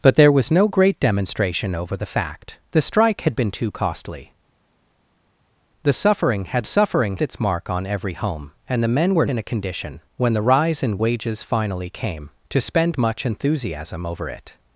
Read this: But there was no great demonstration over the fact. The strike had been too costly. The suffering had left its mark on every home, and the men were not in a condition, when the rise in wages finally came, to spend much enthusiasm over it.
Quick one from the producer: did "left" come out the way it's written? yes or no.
no